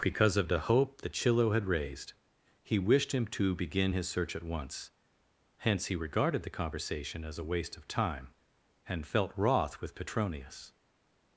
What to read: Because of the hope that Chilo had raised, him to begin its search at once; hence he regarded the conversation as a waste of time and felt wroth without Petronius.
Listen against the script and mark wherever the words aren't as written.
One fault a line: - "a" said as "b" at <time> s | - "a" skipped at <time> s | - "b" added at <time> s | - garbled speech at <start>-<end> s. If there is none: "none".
- "he wished" added at 2.6 s
- "its" said as "his" at 3.9 s
- "without" said as "with" at 9.8 s